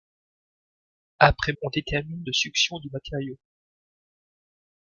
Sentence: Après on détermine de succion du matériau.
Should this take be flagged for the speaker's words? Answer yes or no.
no